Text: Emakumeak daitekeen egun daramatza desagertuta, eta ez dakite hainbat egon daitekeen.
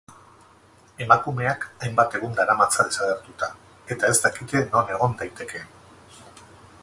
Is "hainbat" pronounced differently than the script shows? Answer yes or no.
yes